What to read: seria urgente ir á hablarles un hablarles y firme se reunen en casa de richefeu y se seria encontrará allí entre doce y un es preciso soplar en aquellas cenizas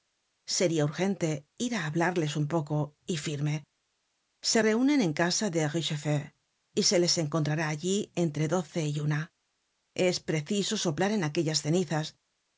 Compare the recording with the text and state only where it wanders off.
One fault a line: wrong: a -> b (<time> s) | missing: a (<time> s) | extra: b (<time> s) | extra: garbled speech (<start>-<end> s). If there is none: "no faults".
wrong: hablarles -> poco (2.5 s)
wrong: seria -> les (7.0 s)
wrong: un -> una (9.1 s)